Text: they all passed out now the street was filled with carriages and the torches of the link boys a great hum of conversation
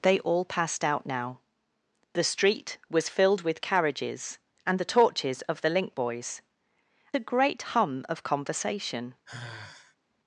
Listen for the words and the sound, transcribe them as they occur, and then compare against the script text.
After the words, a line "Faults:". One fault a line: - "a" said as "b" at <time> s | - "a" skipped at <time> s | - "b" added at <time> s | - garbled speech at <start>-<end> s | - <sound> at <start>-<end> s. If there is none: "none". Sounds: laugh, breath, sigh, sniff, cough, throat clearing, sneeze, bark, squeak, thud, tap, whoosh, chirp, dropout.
they all passed out now the street was filled with carriages and the torches of the link boys a great hum of conversation
Faults:
- sigh at 9.3-10.0 s